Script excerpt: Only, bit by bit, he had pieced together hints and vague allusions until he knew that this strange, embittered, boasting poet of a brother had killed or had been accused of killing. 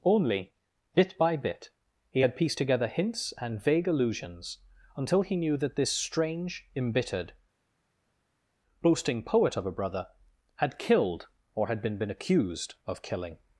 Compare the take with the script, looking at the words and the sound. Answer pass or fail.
fail